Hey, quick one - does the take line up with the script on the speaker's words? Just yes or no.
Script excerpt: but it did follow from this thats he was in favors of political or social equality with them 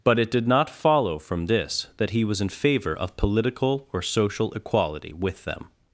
no